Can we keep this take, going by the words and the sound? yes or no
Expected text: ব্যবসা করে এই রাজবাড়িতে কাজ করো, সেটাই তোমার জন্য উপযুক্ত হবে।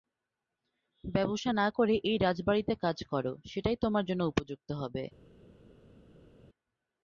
no